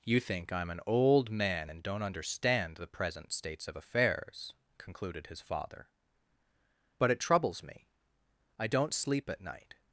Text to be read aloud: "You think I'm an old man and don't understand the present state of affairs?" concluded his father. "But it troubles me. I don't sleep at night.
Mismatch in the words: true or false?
true